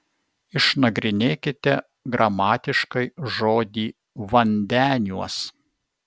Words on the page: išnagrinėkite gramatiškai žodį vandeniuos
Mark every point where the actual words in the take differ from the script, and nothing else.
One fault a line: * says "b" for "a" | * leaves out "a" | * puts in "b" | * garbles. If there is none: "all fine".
all fine